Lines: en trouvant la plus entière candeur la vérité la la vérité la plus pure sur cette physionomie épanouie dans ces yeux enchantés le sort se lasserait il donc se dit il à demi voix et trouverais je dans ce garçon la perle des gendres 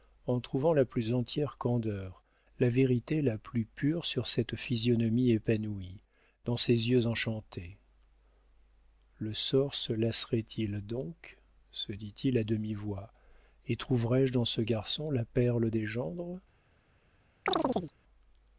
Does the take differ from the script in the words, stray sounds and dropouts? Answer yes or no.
yes